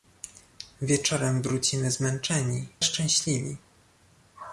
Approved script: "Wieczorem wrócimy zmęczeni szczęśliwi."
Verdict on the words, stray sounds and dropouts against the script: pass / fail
pass